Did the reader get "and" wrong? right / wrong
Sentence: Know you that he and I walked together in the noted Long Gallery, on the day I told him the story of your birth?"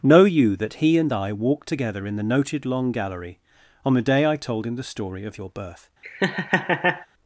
right